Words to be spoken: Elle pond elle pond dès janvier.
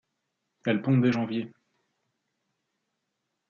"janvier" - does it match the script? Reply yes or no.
yes